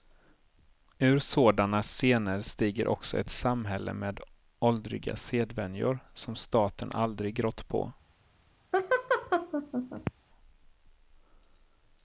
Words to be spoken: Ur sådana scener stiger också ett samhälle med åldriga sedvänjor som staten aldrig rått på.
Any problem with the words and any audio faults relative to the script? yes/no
yes